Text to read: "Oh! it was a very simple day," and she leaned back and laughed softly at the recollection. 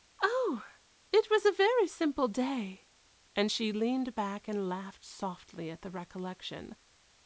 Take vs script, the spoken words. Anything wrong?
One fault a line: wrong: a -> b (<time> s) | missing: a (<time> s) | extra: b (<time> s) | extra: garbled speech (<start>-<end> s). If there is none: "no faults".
no faults